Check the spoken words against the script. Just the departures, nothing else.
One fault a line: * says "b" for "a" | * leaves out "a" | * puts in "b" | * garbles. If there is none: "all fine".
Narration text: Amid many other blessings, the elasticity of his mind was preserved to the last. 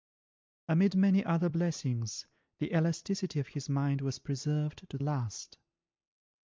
* leaves out "the"